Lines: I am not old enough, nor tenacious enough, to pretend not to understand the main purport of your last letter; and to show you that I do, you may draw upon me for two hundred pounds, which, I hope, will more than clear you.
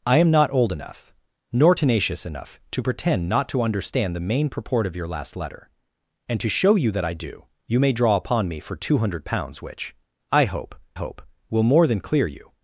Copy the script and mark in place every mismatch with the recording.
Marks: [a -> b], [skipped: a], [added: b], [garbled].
I am not old enough, nor tenacious enough, to pretend not to understand the main purport of your last letter; and to show you that I do, you may draw upon me for two hundred pounds, which, I hope, [added: hope] will more than clear you.